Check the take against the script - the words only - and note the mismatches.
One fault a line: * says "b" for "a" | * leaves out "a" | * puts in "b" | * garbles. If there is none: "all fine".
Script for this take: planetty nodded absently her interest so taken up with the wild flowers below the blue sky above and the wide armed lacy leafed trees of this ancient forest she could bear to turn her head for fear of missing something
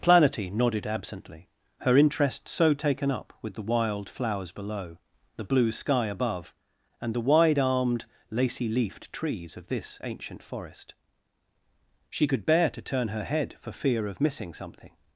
all fine